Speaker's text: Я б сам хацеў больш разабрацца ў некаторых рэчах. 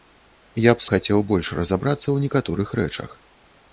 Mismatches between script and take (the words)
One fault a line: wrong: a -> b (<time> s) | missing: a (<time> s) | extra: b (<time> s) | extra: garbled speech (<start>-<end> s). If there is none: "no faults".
missing: сам (0.8 s)